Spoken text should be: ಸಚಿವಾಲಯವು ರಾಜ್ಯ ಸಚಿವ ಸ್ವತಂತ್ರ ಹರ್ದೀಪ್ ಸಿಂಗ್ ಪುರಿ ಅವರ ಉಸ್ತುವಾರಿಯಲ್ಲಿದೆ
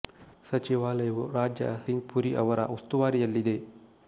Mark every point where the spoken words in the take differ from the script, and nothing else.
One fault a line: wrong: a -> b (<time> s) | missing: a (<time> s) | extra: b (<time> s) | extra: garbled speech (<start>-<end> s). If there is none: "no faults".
missing: ಸಚಿವ ಸ್ವತಂತ್ರ ಹರ್ದೀಪ್ (1.7 s)